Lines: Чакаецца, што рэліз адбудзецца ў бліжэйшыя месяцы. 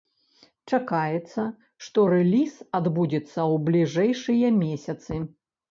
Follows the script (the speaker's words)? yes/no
yes